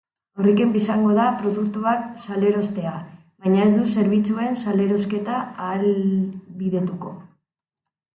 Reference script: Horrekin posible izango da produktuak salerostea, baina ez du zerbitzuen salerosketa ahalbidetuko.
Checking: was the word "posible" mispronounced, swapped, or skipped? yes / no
yes